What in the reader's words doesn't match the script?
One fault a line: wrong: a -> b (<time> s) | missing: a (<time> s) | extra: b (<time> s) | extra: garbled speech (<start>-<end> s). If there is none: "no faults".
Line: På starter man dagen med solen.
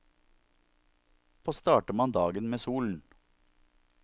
no faults